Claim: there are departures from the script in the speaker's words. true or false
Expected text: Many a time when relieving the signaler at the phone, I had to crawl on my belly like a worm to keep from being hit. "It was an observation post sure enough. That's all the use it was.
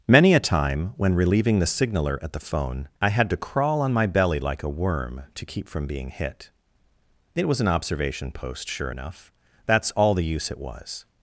false